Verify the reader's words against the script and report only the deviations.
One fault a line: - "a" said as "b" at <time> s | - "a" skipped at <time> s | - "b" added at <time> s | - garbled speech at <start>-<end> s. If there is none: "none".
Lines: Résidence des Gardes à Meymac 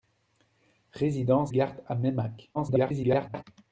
- "des" skipped at 1.5 s
- garbled speech at 2.5-3.4 s